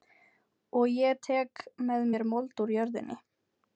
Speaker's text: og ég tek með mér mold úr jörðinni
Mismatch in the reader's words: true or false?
false